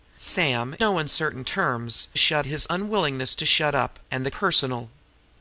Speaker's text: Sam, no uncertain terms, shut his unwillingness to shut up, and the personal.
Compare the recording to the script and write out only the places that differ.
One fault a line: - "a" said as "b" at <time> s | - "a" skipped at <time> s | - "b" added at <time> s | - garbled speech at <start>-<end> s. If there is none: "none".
none